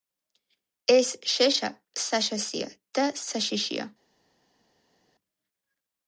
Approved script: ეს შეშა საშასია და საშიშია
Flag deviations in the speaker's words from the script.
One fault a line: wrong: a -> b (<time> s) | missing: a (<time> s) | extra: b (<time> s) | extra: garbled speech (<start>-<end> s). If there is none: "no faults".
no faults